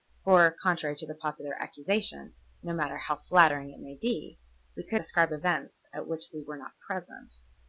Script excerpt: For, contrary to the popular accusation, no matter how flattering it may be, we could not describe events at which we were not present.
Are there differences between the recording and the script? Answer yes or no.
yes